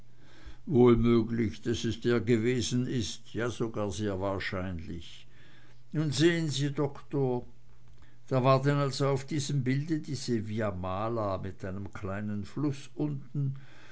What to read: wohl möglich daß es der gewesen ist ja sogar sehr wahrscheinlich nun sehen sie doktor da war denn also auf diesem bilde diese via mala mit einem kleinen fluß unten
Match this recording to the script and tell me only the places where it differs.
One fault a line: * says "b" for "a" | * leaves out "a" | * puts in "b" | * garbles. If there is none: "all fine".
all fine